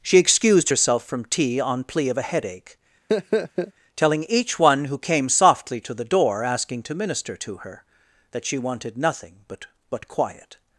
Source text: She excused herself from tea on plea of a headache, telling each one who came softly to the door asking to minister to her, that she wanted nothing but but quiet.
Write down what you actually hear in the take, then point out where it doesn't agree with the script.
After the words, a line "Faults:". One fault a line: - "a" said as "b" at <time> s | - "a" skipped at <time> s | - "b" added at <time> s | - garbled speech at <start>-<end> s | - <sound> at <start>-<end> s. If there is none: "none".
She excused herself from tea on plea of a headache, telling each one who came softly to the door asking to minister to her, that she wanted nothing but but quiet.
Faults:
- laugh at 3.1-3.7 s